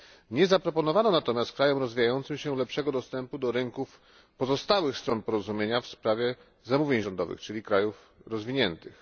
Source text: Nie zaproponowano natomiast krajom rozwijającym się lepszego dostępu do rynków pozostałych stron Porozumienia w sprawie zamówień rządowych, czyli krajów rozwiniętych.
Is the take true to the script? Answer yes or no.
yes